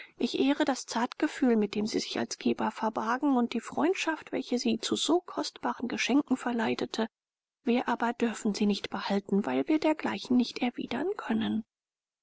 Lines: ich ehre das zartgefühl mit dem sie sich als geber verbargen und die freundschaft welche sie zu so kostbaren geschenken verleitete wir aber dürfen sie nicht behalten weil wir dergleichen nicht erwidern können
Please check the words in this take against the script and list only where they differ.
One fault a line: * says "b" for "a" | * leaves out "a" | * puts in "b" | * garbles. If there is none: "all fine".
all fine